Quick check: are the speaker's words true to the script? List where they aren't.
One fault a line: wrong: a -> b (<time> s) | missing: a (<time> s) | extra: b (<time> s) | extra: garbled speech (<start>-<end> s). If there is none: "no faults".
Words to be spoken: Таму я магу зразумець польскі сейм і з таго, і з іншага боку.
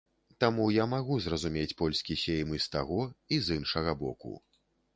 no faults